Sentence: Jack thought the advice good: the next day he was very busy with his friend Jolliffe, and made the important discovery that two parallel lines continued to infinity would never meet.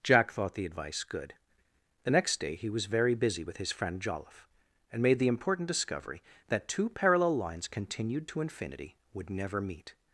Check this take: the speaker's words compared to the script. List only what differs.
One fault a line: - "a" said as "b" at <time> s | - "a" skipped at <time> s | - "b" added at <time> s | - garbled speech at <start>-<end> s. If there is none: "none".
none